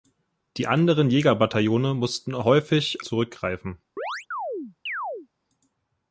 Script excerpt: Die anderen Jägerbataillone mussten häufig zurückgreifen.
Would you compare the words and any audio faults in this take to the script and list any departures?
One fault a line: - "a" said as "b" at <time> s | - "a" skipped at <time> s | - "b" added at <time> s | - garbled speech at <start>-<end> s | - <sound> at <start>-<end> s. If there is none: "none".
- chirp at 4.0-5.3 s